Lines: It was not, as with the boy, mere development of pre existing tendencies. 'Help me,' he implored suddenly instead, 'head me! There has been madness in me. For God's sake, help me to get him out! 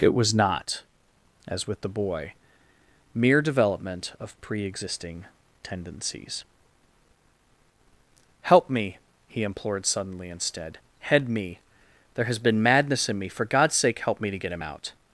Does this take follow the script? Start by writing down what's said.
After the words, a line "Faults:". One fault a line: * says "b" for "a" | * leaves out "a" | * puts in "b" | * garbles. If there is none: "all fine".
It was not, as with the boy, mere development of pre existing tendencies. 'Help me,' he implored suddenly instead, 'head me! There has been madness in me. For God's sake, help me to get him out!
Faults:
all fine